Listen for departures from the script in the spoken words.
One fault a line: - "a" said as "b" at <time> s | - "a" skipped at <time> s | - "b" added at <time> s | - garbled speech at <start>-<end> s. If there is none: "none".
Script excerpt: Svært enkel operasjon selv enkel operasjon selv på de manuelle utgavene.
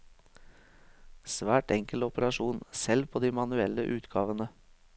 - "enkel operasjon selv" skipped at 3.1 s